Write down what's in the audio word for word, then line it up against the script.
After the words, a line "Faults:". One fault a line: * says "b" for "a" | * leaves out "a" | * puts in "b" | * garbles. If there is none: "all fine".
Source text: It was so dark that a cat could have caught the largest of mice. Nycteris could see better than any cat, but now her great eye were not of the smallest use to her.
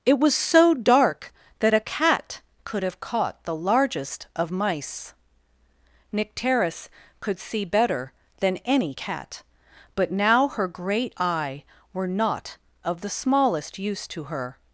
It was so dark that a cat could have caught the largest of mice. Nycteris could see better than any cat, but now her great eye were not of the smallest use to her.
Faults:
all fine